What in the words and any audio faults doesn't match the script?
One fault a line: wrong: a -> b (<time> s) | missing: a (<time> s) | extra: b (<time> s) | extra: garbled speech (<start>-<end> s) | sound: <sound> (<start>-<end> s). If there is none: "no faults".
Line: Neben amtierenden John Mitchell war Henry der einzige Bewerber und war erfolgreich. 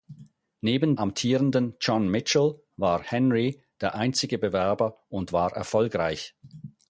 no faults